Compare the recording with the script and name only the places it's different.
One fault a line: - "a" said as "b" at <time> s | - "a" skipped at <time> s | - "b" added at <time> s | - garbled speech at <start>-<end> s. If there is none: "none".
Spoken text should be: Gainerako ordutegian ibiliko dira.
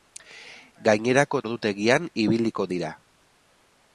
none